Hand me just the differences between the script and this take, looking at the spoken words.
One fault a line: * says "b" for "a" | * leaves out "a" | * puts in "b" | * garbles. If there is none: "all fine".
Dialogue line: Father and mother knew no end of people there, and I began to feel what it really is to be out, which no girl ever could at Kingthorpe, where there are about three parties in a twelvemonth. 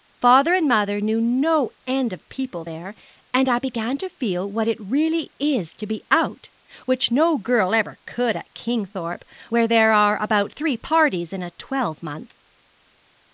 all fine